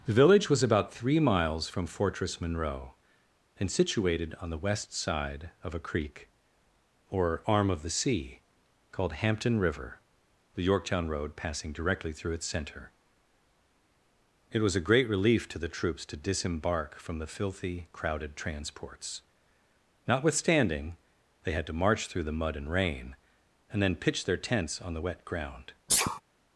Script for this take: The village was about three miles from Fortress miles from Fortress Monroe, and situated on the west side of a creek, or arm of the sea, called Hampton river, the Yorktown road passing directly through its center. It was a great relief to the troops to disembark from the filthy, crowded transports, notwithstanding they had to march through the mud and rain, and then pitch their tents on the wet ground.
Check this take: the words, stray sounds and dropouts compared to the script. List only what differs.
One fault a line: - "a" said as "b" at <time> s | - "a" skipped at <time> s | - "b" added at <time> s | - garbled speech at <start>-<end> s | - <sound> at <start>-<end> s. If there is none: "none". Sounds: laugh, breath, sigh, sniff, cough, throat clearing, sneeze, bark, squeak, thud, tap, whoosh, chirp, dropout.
- "miles from Fortress" skipped at 2.4 s
- sneeze at 25.9-26.2 s